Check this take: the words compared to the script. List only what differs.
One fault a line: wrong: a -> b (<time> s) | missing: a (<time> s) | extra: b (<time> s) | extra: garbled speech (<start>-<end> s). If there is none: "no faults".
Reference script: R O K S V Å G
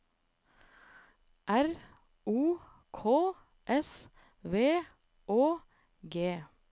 no faults